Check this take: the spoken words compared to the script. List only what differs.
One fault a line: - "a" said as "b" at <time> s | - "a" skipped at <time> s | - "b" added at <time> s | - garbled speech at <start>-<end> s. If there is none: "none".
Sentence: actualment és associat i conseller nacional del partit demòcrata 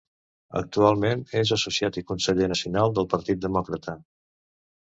none